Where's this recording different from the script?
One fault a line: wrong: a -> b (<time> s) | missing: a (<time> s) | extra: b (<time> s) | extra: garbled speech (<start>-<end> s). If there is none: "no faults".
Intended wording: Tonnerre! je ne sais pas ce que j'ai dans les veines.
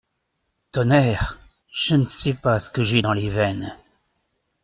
no faults